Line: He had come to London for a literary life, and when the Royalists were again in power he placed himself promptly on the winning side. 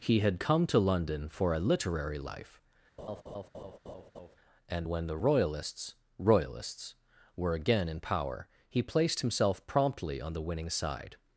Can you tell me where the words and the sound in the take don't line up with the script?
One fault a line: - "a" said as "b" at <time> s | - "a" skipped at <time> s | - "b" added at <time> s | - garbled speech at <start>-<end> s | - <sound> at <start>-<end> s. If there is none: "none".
- laugh at 3.0-4.4 s
- "Royalists" added at 6.2 s